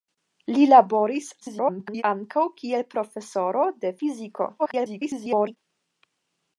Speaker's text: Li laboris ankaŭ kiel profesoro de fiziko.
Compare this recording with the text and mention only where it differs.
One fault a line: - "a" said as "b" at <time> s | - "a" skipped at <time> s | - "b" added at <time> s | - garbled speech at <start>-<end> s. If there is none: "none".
- garbled speech at 1.4-2.0 s
- garbled speech at 4.6-5.6 s